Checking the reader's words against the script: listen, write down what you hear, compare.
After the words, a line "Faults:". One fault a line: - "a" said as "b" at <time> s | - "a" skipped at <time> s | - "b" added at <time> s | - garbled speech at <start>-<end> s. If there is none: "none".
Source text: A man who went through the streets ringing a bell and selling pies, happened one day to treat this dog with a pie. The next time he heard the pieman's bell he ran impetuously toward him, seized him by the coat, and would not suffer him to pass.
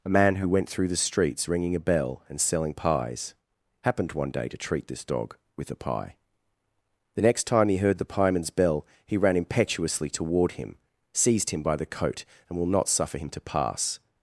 A man who went through the streets ringing a bell and selling pies, happened one day to treat this dog with a pie. The next time he heard the pieman's bell he ran impetuously toward him, seized him by the coat, and will not suffer him to pass.
Faults:
- "would" said as "will" at 12.6 s